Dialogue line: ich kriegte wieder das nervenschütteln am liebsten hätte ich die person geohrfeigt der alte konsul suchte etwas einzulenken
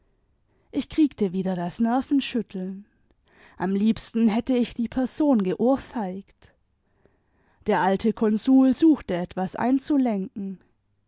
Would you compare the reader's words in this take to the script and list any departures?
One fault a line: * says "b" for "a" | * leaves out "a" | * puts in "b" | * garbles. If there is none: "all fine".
all fine